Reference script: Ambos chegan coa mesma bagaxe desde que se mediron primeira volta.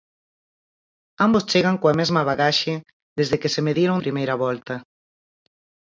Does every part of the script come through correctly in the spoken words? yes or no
yes